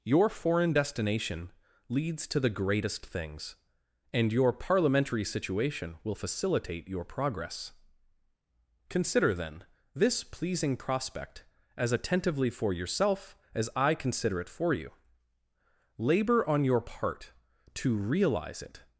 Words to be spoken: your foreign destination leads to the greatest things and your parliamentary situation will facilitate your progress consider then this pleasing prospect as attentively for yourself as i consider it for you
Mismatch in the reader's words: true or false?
true